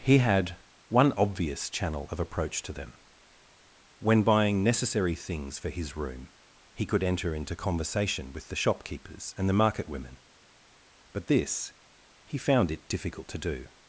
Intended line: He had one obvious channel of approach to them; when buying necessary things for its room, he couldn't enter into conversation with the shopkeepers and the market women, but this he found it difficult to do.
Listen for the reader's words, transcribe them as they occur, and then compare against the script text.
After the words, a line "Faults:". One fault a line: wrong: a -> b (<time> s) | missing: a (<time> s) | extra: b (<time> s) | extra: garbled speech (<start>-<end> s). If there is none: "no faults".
He had one obvious channel of approach to them; when buying necessary things for his room, he could enter into conversation with the shopkeepers and the market women, but this he found it difficult to do.
Faults:
wrong: its -> his (5.7 s)
wrong: couldn't -> could (6.8 s)